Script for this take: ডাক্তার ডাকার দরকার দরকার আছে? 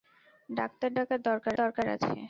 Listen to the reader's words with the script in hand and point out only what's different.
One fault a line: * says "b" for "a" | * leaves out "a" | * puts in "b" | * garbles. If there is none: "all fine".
all fine